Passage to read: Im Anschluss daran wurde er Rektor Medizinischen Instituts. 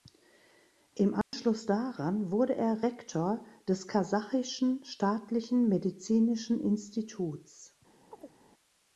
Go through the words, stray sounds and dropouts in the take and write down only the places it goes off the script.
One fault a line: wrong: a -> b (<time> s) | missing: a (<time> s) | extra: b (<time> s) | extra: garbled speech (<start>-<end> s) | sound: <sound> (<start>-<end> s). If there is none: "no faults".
sound: dropout (1.2-1.3 s)
extra: des Kasachischen Staatlichen (3.7 s)
sound: chirp (8.1-8.4 s)